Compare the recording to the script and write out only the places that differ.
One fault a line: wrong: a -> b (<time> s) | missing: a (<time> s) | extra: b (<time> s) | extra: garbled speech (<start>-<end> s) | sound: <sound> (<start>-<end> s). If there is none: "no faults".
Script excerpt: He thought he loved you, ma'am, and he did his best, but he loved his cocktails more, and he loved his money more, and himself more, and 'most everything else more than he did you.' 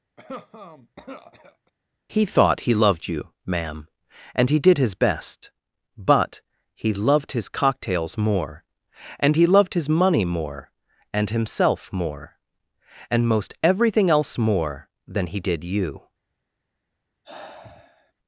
sound: cough (0.2-1.7 s)
sound: sigh (17.2-18.1 s)